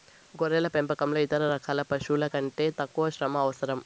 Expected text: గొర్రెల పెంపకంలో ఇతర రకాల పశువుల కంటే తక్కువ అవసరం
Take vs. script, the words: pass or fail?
fail